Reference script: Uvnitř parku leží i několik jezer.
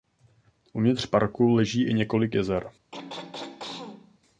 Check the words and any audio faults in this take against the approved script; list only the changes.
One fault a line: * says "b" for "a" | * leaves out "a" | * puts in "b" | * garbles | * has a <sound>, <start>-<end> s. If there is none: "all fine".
* has a throat clearing, 2.9-4.2 s